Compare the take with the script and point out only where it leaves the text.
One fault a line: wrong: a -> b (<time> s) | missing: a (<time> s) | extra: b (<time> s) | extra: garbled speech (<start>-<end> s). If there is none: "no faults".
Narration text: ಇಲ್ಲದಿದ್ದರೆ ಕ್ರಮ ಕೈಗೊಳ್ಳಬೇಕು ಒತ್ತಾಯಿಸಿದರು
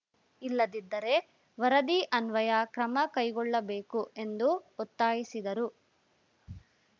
extra: ವರದಿ ಅನ್ವಯ (1.6 s)
extra: ಎಂದು (4.2 s)